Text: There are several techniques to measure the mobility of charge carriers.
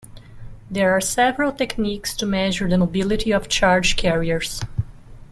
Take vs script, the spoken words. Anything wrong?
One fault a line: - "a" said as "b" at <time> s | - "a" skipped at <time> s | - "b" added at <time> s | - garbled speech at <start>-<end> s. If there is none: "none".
none